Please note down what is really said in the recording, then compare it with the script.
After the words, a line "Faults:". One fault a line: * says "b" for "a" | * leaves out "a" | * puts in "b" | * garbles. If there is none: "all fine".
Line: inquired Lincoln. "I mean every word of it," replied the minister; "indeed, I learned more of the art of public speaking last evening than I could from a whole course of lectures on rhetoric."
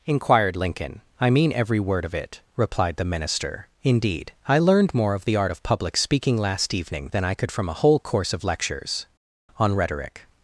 inquired Lincoln. "I mean every word of it," replied the minister; "indeed, I learned more of the art of public speaking last evening than I could from a whole course of lectures on rhetoric."
Faults:
all fine